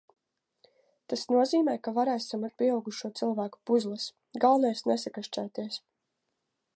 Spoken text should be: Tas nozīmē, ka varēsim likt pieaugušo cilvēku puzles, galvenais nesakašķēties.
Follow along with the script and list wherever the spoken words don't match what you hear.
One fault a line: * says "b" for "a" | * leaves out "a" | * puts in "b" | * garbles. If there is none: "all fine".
all fine